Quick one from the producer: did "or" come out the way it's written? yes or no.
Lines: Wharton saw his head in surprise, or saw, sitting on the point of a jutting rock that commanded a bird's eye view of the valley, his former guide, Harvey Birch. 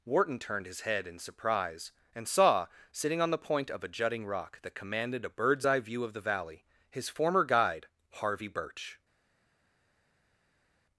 no